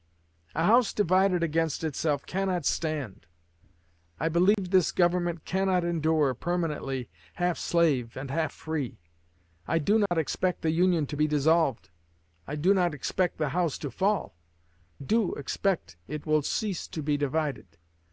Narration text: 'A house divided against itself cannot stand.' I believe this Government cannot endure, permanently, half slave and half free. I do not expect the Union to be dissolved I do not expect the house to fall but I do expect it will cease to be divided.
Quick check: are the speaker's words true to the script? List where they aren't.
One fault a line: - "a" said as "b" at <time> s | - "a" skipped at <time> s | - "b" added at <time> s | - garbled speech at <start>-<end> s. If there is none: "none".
- "but I" skipped at 14.4 s